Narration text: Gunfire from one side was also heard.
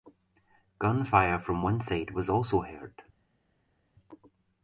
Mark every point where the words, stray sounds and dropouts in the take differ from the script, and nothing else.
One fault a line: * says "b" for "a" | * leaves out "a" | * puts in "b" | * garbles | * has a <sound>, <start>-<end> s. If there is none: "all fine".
all fine